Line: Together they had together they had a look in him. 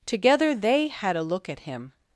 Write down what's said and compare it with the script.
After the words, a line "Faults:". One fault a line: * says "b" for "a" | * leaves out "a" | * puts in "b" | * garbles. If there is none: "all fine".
Together they had a look at him.
Faults:
* leaves out "together they had"
* says "at" for "in"